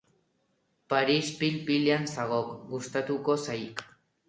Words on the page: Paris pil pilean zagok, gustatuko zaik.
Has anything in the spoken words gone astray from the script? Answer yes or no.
no